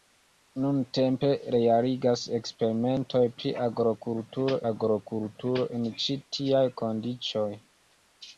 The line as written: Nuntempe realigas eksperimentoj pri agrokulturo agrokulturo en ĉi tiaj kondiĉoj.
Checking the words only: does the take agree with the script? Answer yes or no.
yes